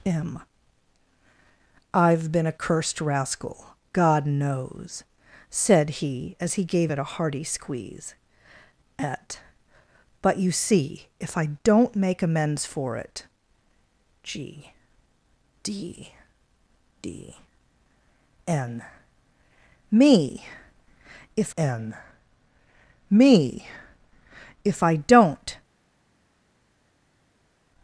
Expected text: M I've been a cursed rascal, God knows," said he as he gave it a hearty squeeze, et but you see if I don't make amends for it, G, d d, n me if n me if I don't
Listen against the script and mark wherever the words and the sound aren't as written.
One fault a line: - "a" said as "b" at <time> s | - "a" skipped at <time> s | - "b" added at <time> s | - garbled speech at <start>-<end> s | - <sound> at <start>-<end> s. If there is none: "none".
none